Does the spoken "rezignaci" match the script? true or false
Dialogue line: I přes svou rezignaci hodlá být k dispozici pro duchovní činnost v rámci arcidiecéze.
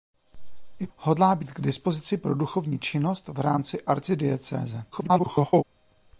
false